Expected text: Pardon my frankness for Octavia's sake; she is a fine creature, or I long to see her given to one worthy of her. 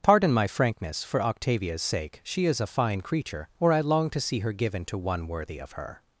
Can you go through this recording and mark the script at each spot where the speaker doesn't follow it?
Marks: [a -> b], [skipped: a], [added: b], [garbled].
Pardon my frankness for Octavia's sake; she is a fine creature, or I long to see her given to one worthy of her.